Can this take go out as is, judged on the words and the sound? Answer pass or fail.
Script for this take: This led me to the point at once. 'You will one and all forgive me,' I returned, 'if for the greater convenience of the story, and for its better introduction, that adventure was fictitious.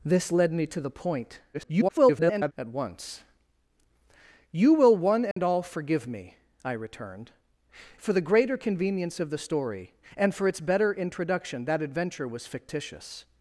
fail